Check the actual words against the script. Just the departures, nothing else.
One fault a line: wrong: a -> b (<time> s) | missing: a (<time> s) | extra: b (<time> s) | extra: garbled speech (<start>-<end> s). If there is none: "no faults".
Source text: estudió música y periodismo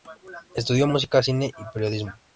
extra: cine (1.2 s)